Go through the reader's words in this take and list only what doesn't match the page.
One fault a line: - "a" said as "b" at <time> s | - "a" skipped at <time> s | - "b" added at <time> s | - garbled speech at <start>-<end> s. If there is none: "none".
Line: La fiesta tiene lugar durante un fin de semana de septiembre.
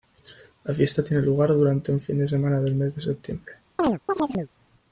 - "del mes" added at 2.6 s